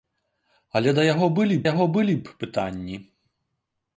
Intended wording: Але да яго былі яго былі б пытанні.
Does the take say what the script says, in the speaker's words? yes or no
yes